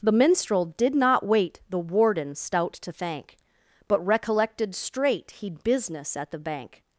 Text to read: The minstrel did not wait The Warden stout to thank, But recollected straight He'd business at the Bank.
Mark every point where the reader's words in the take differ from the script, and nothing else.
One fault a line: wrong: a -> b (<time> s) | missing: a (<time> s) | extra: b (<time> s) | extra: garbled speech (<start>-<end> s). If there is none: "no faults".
no faults